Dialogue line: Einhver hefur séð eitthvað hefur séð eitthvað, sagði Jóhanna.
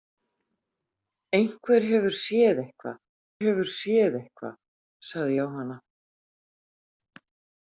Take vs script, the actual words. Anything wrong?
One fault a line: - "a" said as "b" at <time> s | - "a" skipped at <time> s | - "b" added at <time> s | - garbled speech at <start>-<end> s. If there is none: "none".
none